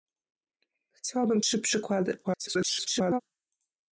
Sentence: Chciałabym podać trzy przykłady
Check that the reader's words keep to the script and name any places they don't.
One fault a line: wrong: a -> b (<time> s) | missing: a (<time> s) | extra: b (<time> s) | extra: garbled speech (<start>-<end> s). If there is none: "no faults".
missing: podać (1.4 s)
extra: garbled speech (2.2-3.2 s)